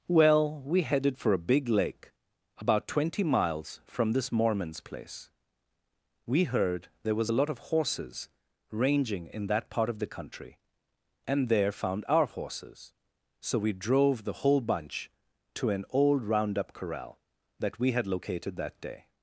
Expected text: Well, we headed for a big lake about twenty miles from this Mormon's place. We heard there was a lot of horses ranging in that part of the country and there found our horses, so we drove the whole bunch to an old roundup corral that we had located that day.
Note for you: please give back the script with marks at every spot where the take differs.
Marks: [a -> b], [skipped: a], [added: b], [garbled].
Well, we headed for a big lake about twenty miles from this Mormon's place. We heard there was a lot of horses ranging in that part of the country and there found our horses, so we drove the whole bunch to an old roundup corral that we had located that day.